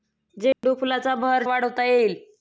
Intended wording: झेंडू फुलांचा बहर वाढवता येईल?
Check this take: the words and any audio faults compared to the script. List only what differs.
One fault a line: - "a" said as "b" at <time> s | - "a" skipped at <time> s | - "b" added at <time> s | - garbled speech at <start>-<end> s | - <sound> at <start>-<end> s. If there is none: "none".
- dropout at 0.5-0.6 s